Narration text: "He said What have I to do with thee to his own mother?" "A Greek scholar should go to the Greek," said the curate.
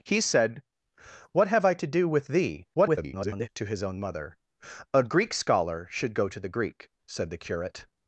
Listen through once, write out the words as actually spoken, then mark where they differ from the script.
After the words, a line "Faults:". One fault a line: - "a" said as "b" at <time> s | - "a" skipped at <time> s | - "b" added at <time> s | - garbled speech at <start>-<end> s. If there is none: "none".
"He said What have I to do with thee [garbled] to his own mother?" "A Greek scholar should go to the Greek," said the curate.
Faults:
- garbled speech at 2.7-3.5 s